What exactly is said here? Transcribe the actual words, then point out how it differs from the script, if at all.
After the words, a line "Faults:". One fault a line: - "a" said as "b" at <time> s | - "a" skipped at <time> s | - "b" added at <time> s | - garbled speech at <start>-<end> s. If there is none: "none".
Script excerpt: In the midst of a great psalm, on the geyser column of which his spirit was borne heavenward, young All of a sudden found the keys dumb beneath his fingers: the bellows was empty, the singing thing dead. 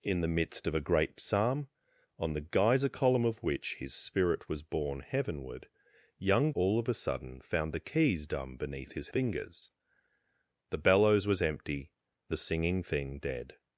In the midst of a great psalm, on the geyser column of which his spirit was borne heavenward, young All of a sudden found the keys dumb beneath his fingers: the bellows was empty, the singing thing dead.
Faults:
none